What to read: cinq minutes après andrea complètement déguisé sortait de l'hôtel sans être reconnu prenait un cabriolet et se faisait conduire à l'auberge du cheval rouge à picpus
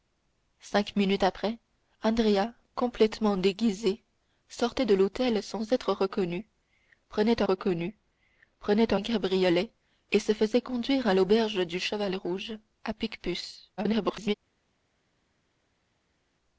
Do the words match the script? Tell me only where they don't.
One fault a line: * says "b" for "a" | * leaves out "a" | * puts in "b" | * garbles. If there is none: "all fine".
* puts in "reconnu prenait"
* garbles